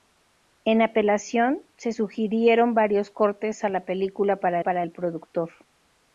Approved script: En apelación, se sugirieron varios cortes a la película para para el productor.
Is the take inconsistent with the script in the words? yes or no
no